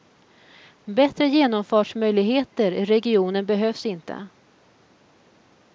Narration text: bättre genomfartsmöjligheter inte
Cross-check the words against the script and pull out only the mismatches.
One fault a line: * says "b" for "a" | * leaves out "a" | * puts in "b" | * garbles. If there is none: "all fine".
* puts in "i regionen behövs"